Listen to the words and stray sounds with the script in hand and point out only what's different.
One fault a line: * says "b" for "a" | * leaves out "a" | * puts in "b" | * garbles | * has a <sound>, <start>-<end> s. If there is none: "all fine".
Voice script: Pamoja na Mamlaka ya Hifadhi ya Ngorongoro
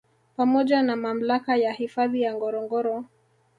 all fine